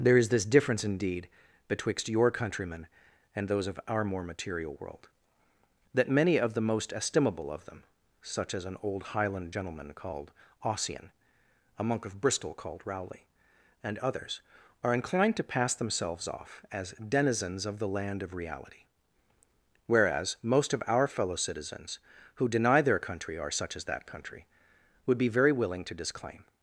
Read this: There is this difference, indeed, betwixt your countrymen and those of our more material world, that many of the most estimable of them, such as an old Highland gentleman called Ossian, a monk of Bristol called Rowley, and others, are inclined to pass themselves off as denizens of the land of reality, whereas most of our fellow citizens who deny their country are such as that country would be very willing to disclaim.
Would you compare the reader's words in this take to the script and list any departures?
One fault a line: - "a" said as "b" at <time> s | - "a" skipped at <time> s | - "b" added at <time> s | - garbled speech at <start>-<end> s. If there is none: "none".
none